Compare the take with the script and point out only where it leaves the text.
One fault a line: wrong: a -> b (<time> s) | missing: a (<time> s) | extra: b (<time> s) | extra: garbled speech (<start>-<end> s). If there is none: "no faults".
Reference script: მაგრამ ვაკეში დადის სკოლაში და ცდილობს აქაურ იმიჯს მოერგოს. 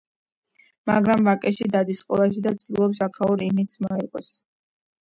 no faults